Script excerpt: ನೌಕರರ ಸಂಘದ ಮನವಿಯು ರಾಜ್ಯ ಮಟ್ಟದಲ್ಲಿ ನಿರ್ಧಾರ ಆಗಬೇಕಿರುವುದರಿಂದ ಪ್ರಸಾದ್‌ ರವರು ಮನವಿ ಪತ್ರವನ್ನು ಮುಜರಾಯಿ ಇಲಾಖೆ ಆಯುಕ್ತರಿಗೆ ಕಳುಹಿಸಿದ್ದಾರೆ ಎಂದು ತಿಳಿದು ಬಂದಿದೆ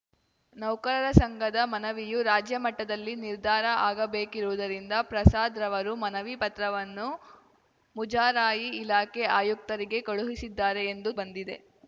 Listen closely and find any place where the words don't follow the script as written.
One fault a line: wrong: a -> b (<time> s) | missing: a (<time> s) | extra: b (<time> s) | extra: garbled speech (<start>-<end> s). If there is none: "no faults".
missing: ತಿಳಿದು (11.1 s)